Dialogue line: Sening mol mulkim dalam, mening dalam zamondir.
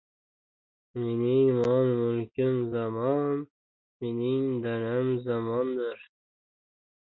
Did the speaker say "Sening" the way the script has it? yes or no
no